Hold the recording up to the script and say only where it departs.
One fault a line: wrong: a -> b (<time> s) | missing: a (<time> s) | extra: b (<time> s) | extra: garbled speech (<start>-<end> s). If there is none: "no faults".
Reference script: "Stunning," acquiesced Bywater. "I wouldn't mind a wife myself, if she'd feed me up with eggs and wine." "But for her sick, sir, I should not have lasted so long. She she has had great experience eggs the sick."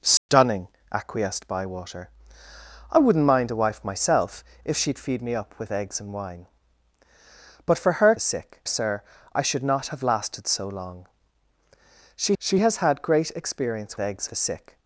no faults